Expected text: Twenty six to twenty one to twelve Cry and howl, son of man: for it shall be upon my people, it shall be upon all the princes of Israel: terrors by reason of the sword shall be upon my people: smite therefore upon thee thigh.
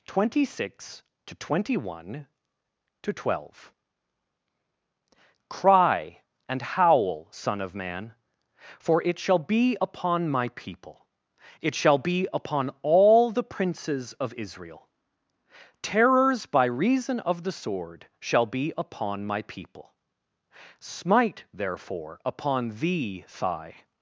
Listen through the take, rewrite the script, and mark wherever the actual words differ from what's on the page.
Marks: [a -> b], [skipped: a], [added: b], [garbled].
Twenty six to twenty one to twelve Cry and howl, son of man: for it shall be upon my people, it shall be upon all the princes of Israel: terrors by reason of the sword shall be upon my people: smite therefore upon thee thigh.